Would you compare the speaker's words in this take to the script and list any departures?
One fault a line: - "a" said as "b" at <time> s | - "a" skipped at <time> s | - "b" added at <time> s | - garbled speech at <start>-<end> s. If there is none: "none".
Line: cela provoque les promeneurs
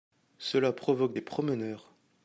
none